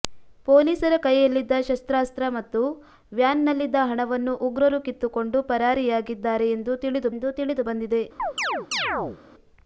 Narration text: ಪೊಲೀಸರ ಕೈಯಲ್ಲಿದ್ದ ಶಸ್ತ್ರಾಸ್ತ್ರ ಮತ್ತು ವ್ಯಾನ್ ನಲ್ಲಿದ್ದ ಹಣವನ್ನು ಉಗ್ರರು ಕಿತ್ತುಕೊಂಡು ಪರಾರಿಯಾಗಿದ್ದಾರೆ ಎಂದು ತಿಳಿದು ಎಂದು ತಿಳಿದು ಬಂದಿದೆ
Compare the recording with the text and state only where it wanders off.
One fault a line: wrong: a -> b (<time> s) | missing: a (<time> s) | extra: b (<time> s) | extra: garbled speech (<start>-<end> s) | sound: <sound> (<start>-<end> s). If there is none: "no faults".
sound: chirp (8.2-9.2 s)